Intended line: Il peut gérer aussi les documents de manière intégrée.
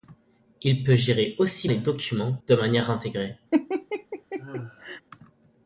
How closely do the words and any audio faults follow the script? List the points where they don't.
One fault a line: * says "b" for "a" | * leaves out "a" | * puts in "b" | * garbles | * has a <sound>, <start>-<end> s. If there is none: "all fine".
* has a laugh, 3.5-5.0 s